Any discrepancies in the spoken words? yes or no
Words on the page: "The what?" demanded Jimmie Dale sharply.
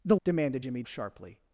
yes